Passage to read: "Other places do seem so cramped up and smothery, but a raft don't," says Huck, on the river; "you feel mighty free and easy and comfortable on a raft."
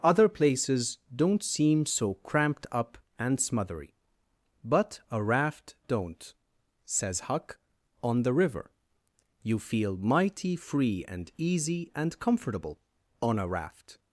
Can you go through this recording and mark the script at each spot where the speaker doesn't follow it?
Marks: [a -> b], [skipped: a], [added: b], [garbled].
"Other places [do -> don't] seem so cramped up and smothery, but a raft don't," says Huck, on the river; "you feel mighty free and easy and comfortable on a raft."